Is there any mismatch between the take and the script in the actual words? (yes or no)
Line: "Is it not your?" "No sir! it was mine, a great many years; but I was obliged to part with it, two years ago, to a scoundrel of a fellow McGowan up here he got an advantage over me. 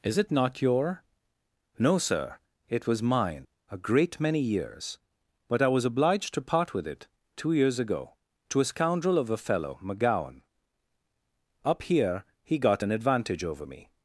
no